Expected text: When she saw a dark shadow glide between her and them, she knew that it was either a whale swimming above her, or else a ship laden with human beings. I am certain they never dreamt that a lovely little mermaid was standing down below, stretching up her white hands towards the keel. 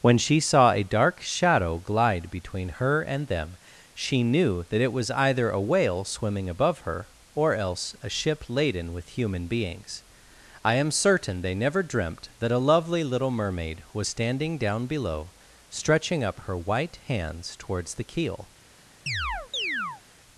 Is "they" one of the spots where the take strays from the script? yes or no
no